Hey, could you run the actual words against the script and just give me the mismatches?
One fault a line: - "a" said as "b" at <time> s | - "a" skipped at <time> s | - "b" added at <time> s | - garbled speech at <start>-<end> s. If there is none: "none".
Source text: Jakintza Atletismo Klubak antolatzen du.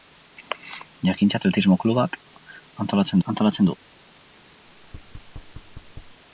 - "antolatzen" added at 3.3 s